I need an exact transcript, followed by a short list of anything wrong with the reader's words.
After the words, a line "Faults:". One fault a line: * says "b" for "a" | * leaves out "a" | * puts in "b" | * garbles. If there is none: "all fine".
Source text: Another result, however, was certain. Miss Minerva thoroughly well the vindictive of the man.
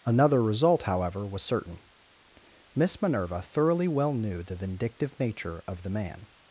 Another result, however, was certain. Miss Minerva thoroughly well knew the vindictive nature of the man.
Faults:
* puts in "knew"
* puts in "nature"